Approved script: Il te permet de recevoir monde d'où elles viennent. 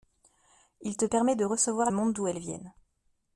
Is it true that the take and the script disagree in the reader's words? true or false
false